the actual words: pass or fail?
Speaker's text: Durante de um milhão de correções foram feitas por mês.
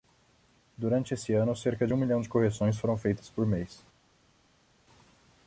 fail